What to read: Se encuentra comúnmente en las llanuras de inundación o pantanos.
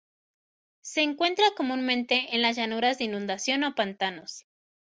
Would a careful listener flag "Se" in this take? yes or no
no